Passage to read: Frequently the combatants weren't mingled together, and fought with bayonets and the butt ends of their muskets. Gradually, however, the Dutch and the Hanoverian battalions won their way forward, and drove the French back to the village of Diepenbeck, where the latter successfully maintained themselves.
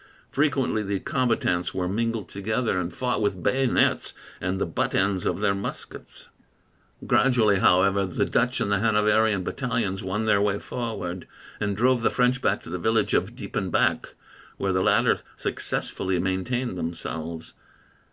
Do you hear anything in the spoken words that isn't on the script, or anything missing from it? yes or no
yes